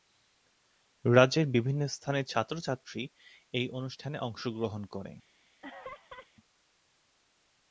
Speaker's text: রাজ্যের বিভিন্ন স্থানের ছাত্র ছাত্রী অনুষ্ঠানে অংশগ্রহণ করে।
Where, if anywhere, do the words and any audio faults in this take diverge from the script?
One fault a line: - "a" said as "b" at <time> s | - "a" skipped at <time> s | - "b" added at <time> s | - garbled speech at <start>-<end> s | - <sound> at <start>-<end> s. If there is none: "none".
- "এই" added at 3.5 s
- laugh at 5.6-6.3 s